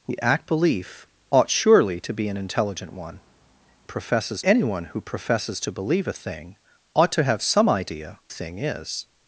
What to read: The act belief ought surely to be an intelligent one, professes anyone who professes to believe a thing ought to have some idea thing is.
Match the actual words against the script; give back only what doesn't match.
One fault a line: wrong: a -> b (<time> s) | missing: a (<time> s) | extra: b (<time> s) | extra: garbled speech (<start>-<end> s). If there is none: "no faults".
no faults